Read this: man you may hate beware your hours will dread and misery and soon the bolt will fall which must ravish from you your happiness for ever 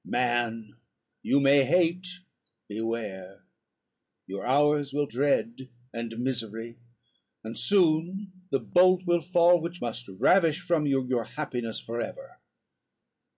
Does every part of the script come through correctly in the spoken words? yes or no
yes